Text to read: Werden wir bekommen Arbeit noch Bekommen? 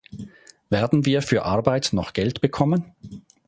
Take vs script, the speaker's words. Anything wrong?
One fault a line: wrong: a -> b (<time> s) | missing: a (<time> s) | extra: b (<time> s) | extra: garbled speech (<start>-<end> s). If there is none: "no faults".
wrong: bekommen -> für (1.2 s)
extra: Geld (2.1 s)